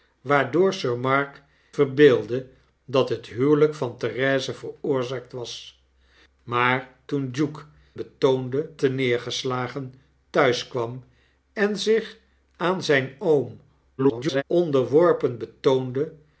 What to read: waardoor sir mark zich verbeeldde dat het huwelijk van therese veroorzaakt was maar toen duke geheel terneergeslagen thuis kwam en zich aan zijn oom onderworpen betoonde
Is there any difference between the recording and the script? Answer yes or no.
yes